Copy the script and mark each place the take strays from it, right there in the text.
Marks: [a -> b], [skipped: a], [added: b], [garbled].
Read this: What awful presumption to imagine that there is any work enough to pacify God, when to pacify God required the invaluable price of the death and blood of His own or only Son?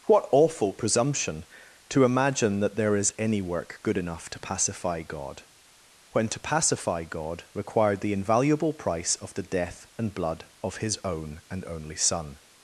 What awful presumption to imagine that there is any work [added: good] enough to pacify God, when to pacify God required the invaluable price of the death and blood of His own [or -> and] only Son?